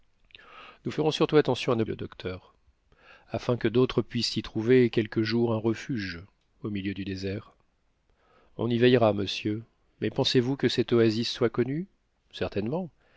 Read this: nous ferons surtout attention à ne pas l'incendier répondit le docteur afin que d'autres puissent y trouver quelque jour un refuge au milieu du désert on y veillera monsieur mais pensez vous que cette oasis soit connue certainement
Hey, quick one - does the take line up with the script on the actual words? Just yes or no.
no